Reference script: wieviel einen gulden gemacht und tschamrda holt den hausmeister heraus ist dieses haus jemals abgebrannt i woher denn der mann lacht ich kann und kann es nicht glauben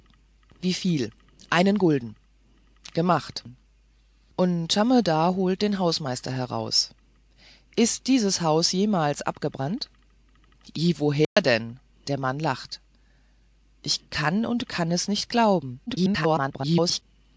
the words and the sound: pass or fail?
fail